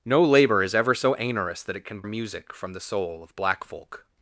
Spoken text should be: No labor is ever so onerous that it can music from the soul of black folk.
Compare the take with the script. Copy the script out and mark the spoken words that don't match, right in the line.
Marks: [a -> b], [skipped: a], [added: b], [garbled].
No labor is ever so onerous that it can music from the soul of black folk.